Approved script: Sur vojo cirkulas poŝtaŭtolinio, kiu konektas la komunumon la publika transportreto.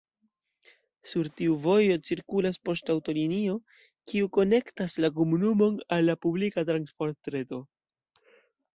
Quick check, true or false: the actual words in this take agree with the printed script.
false